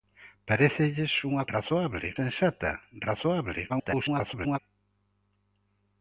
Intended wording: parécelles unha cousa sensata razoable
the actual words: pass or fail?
fail